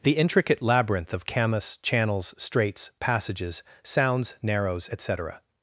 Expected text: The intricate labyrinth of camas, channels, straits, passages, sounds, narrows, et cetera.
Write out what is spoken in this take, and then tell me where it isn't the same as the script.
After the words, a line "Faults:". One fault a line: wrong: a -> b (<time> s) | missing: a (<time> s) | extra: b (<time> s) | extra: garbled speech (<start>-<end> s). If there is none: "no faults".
The intricate labyrinth of camas, channels, straits, passages, sounds, narrows, et cetera.
Faults:
no faults